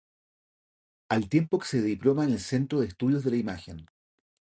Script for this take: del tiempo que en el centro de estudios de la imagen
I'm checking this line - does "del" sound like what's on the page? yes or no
no